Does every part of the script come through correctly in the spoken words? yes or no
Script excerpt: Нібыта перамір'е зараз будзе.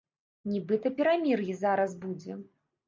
yes